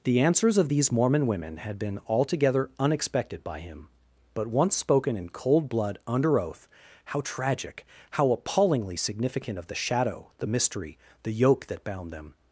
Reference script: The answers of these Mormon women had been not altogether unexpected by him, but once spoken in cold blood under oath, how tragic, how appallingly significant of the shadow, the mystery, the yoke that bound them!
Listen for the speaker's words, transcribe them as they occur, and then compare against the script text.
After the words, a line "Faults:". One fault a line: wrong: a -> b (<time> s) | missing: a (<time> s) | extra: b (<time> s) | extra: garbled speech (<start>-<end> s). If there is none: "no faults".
The answers of these Mormon women had been altogether unexpected by him, but once spoken in cold blood under oath, how tragic, how appallingly significant of the shadow, the mystery, the yoke that bound them!
Faults:
missing: not (2.0 s)